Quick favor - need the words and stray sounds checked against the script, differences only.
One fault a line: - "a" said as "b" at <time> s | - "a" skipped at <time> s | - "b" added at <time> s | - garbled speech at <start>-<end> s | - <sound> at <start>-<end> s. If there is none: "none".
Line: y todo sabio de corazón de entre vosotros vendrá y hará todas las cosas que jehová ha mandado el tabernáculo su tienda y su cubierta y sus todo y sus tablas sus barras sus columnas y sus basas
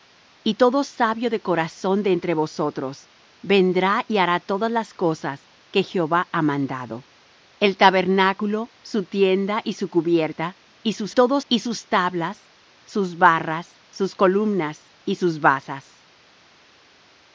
none